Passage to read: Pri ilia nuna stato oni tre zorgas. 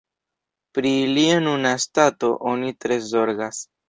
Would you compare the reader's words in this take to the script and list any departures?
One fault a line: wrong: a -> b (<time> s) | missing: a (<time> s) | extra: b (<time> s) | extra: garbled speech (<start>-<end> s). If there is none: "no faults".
no faults